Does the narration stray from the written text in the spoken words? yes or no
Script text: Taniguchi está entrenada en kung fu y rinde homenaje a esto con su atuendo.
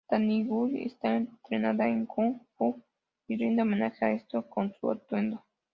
no